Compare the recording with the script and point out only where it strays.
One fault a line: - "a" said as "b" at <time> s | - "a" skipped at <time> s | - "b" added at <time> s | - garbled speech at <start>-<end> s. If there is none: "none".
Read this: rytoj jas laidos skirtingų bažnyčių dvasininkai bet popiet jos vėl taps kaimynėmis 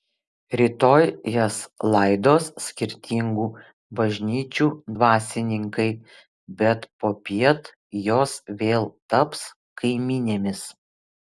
none